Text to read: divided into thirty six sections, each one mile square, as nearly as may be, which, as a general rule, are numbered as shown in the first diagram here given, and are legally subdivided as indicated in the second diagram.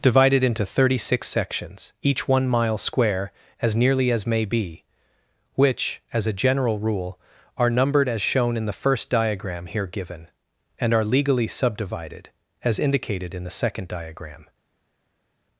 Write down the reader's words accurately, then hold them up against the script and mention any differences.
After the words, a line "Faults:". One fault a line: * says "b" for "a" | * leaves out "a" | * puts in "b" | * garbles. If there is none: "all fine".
divided into thirty six sections, each one mile square, as nearly as may be, which, as a general rule, are numbered as shown in the first diagram here given, and are legally subdivided as indicated in the second diagram.
Faults:
all fine